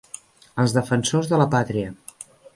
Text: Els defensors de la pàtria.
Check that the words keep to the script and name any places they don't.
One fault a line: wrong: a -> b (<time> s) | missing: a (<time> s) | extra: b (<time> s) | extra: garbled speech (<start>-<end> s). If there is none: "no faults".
no faults